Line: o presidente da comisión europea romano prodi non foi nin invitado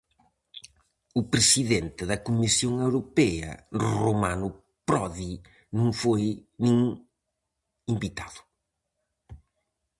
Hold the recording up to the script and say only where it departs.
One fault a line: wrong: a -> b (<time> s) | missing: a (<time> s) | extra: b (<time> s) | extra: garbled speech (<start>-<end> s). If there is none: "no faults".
no faults